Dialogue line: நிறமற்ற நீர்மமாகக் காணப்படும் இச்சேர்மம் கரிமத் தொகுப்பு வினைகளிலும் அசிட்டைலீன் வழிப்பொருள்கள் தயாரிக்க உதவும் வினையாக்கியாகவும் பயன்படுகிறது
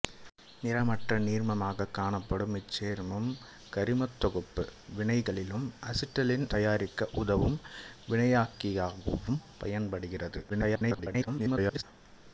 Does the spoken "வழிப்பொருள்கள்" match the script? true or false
false